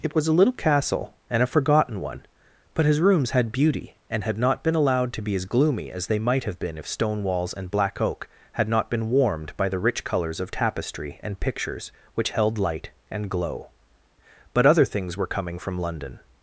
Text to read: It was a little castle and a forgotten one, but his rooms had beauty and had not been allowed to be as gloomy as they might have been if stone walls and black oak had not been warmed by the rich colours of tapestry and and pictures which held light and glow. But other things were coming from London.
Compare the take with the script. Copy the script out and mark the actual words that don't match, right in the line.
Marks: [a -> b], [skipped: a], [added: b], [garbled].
It was a little castle and a forgotten one, but his rooms had beauty and had not been allowed to be as gloomy as they might have been if stone walls and black oak had not been warmed by the rich colours of tapestry and [skipped: and] pictures which held light and glow. But other things were coming from London.